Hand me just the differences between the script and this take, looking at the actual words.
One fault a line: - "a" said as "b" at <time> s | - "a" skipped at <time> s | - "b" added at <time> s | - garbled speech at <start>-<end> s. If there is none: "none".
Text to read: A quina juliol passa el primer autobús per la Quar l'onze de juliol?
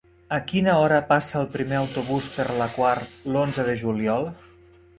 - "juliol" said as "hora" at 0.8 s